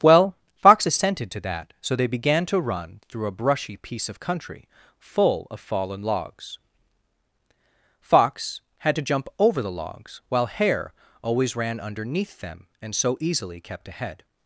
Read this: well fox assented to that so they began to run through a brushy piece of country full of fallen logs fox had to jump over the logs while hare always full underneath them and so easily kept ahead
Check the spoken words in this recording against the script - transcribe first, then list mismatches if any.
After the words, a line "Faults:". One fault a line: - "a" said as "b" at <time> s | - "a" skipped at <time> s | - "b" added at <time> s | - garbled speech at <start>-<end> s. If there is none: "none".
well fox assented to that so they began to run through a brushy piece of country full of fallen logs fox had to jump over the logs while hare always ran underneath them and so easily kept ahead
Faults:
- "full" said as "ran" at 11.5 s